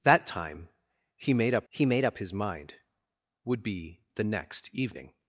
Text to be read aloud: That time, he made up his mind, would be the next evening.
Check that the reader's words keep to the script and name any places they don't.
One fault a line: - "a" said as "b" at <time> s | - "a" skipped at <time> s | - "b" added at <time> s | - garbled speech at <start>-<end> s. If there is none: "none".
- "he made up" added at 1.7 s